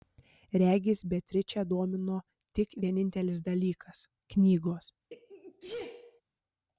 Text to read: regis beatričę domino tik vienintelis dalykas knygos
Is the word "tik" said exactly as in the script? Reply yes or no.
yes